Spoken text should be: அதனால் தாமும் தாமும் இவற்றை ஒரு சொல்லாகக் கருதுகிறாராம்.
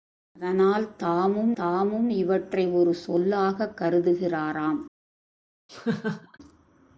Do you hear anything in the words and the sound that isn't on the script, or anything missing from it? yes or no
yes